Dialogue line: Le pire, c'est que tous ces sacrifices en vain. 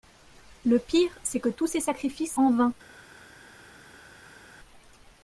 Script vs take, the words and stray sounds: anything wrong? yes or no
no